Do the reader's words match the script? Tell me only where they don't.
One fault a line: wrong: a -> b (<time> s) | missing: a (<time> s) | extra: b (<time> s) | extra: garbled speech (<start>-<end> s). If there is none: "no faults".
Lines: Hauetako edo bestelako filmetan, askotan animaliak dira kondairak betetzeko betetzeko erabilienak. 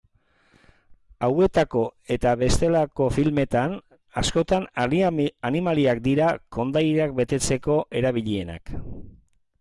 wrong: edo -> eta (2.1 s)
missing: betetzeko (7.8 s)